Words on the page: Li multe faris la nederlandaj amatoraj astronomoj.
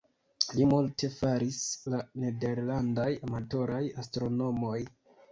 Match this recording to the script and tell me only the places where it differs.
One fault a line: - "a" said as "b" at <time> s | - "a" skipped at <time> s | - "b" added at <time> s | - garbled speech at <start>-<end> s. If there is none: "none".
none